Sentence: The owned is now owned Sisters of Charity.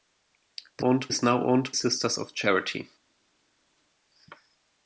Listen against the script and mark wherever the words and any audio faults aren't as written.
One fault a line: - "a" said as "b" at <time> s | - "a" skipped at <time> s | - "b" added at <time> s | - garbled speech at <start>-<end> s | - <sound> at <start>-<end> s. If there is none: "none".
none